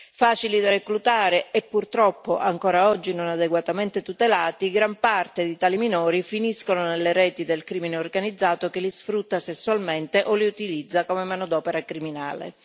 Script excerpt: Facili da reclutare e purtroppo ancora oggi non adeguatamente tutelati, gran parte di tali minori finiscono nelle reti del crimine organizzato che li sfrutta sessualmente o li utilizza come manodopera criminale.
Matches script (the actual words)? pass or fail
pass